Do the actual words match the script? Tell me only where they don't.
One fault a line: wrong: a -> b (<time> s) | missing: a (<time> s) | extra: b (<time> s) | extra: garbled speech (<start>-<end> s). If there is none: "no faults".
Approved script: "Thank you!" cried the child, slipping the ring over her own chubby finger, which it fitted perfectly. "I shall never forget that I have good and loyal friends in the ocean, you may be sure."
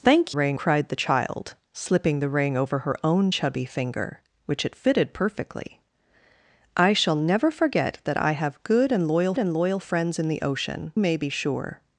wrong: you -> ring (0.3 s)
extra: and loyal (9.4 s)
missing: you (10.9 s)